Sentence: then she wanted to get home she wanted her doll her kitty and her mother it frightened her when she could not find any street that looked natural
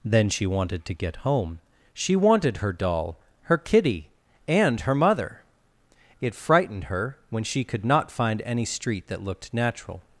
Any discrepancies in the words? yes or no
no